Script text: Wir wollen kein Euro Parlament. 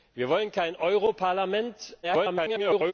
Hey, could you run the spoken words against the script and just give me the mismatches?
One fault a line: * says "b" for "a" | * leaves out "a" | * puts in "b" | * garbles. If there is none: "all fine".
* garbles